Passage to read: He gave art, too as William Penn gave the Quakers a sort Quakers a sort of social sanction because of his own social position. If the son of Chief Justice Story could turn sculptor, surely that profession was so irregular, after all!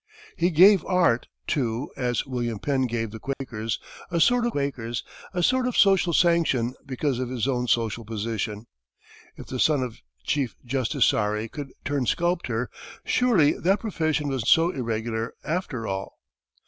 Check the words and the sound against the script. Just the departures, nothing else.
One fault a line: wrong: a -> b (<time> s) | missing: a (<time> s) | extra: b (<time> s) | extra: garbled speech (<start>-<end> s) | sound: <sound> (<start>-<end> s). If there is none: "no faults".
sound: dropout (3.3-3.4 s)